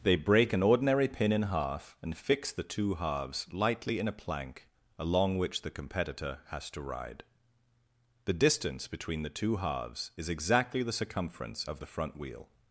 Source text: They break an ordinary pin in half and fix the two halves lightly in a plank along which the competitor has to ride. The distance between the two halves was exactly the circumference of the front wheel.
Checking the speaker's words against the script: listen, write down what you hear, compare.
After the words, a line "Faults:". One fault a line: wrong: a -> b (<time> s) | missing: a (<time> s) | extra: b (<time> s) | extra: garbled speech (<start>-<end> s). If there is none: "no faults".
They break an ordinary pin in half and fix the two halves lightly in a plank along which the competitor has to ride. The distance between the two halves is exactly the circumference of the front wheel.
Faults:
wrong: was -> is (10.2 s)